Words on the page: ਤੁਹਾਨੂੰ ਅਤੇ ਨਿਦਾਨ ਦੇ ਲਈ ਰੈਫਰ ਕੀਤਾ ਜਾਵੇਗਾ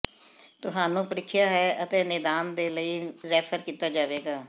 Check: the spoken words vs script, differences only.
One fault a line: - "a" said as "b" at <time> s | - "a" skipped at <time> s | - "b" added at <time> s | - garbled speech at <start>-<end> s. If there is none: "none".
- "ਪ੍ਰੀਖਿਆ ਹੈ" added at 1.1 s